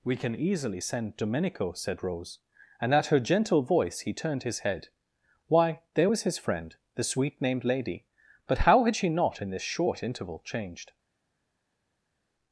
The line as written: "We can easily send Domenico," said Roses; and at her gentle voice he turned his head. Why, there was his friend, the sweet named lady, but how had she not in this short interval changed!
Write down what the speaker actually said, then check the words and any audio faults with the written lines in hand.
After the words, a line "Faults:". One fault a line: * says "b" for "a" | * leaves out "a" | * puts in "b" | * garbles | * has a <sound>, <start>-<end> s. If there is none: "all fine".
"We can easily send Domenico," said Rose; and at her gentle voice he turned his head. Why, there was his friend, the sweet named lady, but how had she not in this short interval changed!
Faults:
* says "Rose" for "Roses"